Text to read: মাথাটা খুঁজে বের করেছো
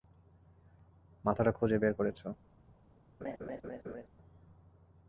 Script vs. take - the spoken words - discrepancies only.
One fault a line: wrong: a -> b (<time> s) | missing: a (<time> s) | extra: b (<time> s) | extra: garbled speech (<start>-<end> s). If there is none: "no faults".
no faults